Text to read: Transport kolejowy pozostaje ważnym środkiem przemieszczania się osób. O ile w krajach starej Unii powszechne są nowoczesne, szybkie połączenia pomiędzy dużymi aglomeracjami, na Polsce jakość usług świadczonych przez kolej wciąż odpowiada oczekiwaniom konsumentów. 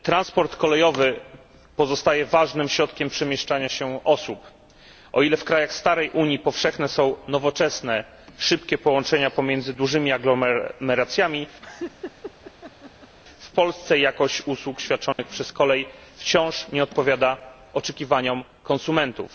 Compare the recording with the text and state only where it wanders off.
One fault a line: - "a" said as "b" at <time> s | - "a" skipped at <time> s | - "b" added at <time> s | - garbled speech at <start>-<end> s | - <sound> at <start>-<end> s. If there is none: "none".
- laugh at 11.6-13.1 s
- "na" said as "w" at 13.4 s
- dropout at 15.1-15.2 s
- "nie" added at 16.7 s